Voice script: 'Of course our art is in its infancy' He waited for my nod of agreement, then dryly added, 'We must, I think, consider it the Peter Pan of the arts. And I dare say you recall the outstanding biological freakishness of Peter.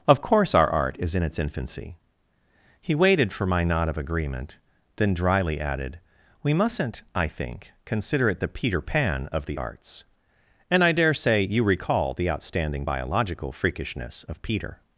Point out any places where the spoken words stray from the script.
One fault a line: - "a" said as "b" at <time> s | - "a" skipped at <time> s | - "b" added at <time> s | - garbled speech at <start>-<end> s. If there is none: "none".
- "must" said as "mustn't" at 6.5 s